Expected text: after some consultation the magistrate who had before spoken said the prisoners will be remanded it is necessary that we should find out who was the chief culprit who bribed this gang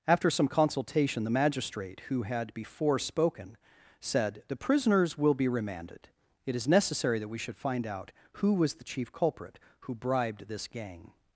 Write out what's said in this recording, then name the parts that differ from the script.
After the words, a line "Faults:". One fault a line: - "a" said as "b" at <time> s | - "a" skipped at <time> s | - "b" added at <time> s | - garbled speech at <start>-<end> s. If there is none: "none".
after some consultation the magistrate who had before spoken said the prisoners will be remanded it is necessary that we should find out who was the chief culprit who bribed this gang
Faults:
none